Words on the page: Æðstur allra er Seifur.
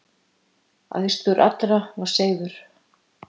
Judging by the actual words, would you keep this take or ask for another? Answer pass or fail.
fail